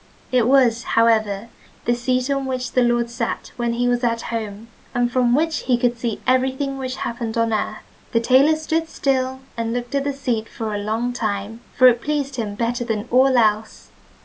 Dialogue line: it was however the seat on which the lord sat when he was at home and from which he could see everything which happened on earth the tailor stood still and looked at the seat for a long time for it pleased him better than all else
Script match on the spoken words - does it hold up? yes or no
yes